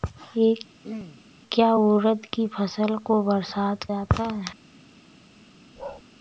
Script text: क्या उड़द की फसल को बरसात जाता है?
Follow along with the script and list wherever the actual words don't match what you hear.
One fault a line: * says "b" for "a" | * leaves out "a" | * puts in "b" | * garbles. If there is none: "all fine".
all fine